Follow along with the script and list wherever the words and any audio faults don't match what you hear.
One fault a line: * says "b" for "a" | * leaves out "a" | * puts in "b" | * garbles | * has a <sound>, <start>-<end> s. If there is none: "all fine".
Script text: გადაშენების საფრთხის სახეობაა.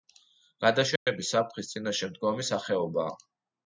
* has a dropout, 1.0-1.1 s
* puts in "წინაშე მდგომი"